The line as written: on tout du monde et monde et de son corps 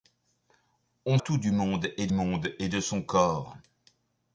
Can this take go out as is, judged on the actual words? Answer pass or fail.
pass